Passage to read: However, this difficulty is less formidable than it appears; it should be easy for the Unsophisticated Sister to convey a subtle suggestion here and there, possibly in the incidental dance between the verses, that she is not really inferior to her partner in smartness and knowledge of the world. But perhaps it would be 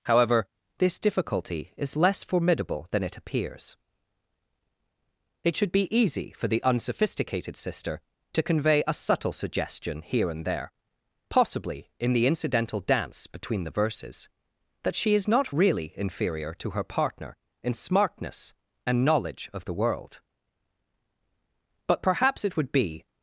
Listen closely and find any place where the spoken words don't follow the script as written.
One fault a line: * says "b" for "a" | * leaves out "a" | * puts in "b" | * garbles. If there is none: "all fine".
all fine